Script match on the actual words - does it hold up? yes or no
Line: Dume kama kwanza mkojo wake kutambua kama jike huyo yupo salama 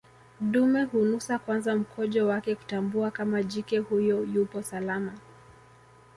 no